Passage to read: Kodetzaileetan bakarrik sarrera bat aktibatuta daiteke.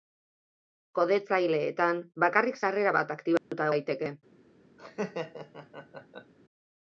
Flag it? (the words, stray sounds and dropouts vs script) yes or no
yes